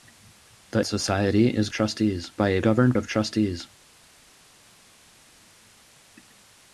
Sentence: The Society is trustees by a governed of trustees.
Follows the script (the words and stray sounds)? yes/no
yes